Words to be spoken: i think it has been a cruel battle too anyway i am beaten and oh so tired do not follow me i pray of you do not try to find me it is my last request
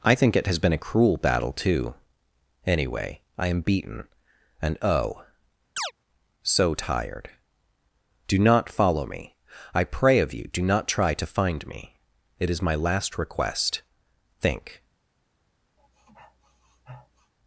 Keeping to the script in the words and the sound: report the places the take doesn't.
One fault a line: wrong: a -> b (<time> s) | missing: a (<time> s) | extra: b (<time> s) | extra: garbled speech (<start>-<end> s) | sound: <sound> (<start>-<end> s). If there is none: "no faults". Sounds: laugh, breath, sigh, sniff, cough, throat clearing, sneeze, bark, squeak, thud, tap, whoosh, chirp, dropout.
sound: chirp (5.8-5.9 s)
extra: think (14.4 s)
sound: sniff (15.8-17.3 s)